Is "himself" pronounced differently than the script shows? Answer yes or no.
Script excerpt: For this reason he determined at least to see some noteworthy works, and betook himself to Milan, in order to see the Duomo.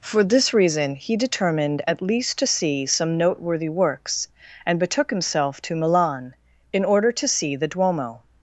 no